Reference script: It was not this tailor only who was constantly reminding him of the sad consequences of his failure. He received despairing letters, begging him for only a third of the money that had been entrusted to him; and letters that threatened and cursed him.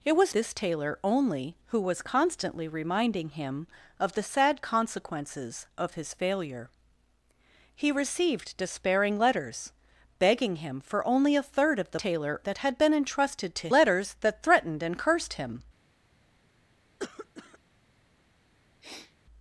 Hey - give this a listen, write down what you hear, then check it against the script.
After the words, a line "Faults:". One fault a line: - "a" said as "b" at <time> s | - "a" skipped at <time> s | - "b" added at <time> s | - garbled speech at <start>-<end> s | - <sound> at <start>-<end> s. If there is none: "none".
It was this tailor only who was constantly reminding him of the sad consequences of his failure. He received despairing letters, begging him for only a third of the tailor that had been entrusted to letters that threatened and cursed him.
Faults:
- "not" skipped at 0.3 s
- "money" said as "tailor" at 11.9 s
- "him and" skipped at 13.7 s
- cough at 17.0-17.6 s
- sniff at 18.8-19.2 s